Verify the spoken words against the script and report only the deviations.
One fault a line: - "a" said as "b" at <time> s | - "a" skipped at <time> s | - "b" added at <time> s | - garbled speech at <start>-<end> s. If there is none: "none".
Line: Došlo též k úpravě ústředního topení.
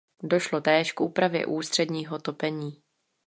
none